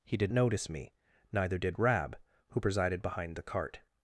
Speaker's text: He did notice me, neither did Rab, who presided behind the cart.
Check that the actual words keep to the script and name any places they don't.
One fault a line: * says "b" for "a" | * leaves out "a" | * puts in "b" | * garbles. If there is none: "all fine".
all fine